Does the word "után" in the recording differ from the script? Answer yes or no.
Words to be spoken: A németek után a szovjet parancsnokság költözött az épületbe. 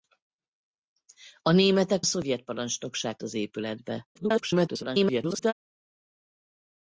yes